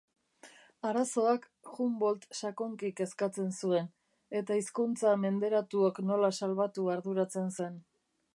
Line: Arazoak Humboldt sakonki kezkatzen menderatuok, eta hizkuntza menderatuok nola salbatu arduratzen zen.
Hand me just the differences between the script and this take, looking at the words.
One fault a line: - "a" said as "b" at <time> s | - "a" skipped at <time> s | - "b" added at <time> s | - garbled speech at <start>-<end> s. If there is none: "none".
- "menderatuok" said as "zuen" at 3.6 s